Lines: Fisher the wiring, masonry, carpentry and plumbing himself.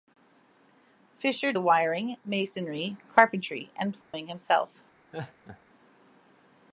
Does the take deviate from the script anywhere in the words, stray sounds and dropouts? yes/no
yes